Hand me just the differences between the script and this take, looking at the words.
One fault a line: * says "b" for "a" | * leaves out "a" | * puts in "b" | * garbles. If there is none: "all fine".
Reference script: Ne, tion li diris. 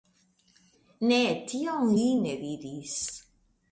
* puts in "ne"